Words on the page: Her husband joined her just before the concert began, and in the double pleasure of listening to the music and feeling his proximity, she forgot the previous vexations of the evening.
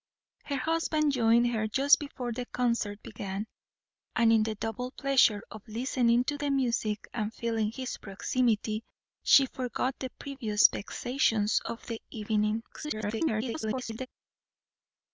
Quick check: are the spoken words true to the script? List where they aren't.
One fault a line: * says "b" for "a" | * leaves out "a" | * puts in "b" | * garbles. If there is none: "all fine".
* garbles